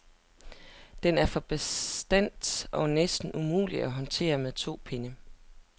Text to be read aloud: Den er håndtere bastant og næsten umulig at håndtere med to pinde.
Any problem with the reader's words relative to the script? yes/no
yes